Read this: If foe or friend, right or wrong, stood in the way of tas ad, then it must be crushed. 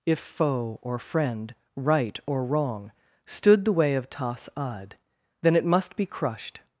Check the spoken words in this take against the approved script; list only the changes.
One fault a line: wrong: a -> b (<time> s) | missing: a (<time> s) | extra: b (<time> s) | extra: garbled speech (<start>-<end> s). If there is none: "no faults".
missing: in (3.6 s)